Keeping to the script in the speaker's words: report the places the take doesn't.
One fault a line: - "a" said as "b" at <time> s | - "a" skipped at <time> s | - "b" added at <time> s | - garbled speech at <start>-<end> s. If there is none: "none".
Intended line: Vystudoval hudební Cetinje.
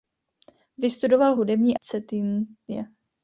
none